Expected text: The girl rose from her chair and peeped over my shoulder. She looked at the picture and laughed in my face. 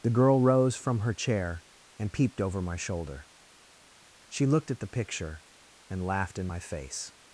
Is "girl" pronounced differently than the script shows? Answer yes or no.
no